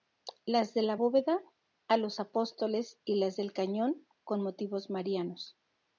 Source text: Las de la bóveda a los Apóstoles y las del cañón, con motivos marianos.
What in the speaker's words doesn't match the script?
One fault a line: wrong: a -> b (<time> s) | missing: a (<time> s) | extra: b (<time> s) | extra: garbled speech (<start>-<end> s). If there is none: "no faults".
no faults